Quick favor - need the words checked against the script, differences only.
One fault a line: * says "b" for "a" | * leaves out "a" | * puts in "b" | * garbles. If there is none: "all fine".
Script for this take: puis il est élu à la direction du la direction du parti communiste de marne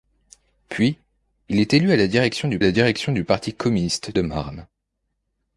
all fine